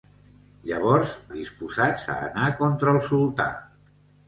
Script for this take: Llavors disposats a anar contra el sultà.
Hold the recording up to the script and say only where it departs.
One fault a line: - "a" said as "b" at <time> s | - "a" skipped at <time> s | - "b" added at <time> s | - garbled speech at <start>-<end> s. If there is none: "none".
none